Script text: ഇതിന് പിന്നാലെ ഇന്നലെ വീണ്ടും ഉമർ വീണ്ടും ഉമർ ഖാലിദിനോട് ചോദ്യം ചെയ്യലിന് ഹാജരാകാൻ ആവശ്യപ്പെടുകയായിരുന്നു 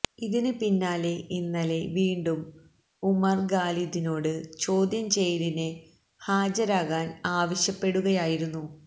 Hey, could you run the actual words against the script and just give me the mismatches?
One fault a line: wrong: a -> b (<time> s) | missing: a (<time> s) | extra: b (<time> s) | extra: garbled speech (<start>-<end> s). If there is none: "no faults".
missing: വീണ്ടും ഉമർ (3.4 s)